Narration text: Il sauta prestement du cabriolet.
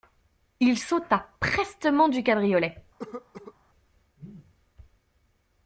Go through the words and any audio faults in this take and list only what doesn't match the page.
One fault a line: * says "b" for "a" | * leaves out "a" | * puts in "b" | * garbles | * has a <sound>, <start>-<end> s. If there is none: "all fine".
* has a cough, 3.0-3.5 s